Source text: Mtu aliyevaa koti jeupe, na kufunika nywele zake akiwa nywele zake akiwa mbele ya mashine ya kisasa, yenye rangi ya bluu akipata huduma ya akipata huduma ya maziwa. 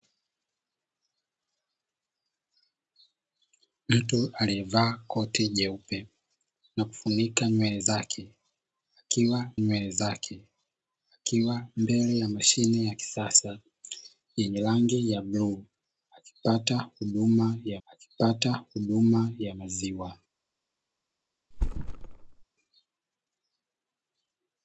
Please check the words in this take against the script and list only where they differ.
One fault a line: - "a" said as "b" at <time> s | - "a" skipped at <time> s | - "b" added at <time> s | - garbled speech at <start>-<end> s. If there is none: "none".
none